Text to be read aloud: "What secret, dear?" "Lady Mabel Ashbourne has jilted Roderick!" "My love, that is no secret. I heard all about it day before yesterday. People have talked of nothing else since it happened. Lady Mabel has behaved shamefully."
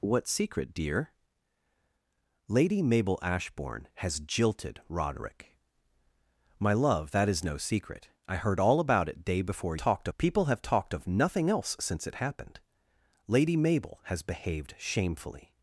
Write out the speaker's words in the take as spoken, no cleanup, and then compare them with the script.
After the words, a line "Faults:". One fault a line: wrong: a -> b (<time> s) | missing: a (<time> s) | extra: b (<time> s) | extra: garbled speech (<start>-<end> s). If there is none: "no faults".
"What secret, dear?" "Lady Mabel Ashbourne has jilted Roderick!" "My love, that is no secret. I heard all about it day before talked. People have talked of nothing else since it happened. Lady Mabel has behaved shamefully."
Faults:
wrong: yesterday -> talked (9.8 s)